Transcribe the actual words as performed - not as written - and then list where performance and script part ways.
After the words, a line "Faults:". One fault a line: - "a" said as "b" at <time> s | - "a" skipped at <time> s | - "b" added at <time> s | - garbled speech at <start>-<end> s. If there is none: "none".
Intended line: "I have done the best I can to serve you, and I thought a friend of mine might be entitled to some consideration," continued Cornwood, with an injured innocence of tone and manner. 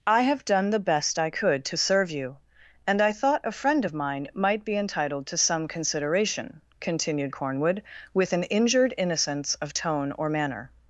"I have done the best I could to serve you, and I thought a friend of mine might be entitled to some consideration," continued Cornwood, with an injured innocence of tone or manner.
Faults:
- "can" said as "could" at 1.3 s
- "and" said as "or" at 10.1 s